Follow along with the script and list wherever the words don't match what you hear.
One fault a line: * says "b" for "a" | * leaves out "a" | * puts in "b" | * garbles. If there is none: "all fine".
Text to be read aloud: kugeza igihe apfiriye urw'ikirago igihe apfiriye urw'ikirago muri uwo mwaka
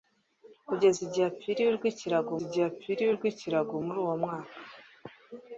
all fine